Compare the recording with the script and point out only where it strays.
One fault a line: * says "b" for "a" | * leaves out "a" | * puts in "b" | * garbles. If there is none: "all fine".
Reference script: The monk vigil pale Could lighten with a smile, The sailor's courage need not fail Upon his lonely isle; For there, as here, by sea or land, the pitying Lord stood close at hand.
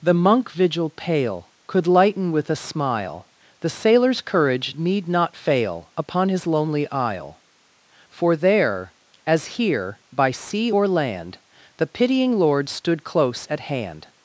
all fine